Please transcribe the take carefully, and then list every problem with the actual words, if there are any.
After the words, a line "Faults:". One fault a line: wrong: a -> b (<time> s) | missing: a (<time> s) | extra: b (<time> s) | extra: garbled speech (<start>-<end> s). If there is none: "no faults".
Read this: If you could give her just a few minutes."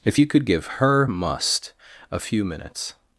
If you could give her must a few minutes."
Faults:
wrong: just -> must (1.1 s)